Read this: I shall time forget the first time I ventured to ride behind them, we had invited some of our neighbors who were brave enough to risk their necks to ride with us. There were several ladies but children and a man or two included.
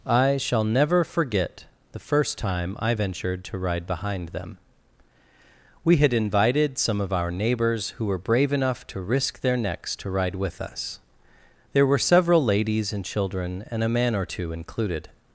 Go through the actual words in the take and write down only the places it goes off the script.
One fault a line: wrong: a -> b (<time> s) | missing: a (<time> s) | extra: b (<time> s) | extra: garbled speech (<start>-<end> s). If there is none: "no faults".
wrong: time -> never (0.6 s)
wrong: but -> and (12.9 s)